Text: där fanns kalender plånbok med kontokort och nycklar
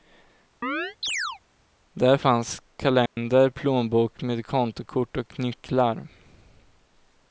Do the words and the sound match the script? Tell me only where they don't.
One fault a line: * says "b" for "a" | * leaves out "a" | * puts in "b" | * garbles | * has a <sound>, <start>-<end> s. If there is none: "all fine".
* has a chirp, 0.6-1.4 s
* has a dropout, 3.1-3.2 s